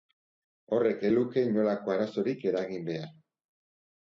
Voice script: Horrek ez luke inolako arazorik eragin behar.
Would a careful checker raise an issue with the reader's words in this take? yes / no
no